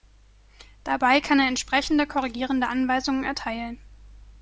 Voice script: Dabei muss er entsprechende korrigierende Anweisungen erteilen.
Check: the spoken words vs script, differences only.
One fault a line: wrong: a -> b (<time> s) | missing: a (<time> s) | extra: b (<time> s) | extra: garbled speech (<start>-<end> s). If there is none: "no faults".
wrong: muss -> kann (1.2 s)